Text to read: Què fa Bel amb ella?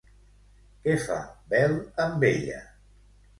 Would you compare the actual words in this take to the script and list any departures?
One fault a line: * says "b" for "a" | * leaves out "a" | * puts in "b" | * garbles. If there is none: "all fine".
all fine